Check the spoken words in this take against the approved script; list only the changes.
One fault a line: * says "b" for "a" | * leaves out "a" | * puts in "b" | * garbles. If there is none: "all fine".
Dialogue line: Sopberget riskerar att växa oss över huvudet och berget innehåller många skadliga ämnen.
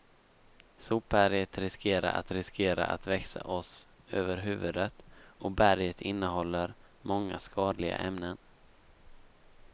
* puts in "riskerar att"